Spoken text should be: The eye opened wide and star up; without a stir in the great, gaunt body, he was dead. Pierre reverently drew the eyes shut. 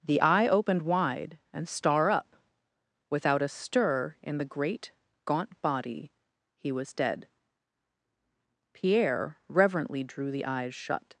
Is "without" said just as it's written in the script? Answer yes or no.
yes